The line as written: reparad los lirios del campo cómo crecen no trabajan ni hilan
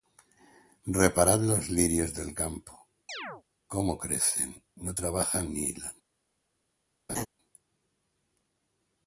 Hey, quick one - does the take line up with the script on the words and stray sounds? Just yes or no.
no